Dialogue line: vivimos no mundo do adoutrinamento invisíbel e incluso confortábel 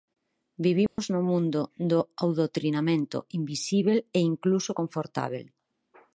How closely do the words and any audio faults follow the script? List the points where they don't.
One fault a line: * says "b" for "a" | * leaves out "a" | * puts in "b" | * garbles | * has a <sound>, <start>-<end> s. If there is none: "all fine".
* has a dropout, 0.9-1.0 s